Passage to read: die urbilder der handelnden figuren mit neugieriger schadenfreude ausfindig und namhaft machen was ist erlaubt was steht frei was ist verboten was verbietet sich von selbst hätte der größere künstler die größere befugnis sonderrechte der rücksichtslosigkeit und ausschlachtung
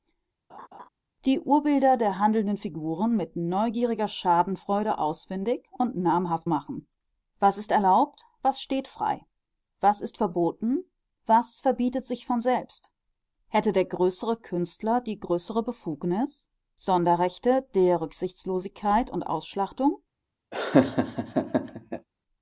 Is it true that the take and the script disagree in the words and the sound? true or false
true